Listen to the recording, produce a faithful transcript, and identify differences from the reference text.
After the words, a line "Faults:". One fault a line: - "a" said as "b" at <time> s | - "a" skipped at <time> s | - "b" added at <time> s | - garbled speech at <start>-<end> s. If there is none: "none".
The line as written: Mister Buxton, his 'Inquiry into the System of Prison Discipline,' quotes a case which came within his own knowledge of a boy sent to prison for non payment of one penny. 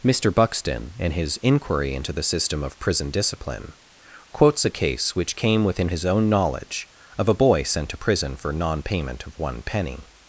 Mister Buxton, in his 'Inquiry into the System of Prison Discipline,' quotes a case which came within his own knowledge of a boy sent to prison for non payment of one penny.
Faults:
- "in" added at 1.0 s